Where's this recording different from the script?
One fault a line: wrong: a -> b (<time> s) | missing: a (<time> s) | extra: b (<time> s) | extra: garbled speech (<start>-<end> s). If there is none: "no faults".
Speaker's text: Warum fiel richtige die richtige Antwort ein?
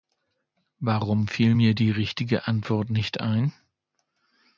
wrong: richtige -> mir (1.5 s)
extra: nicht (2.9 s)